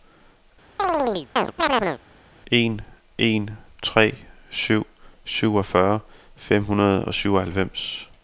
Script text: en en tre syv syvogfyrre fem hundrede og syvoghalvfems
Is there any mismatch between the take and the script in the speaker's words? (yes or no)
no